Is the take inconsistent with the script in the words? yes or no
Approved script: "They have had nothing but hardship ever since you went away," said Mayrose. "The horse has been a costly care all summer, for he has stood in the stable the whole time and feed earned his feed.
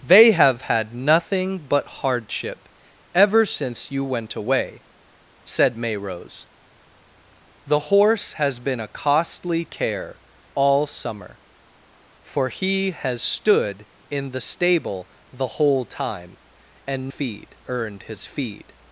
no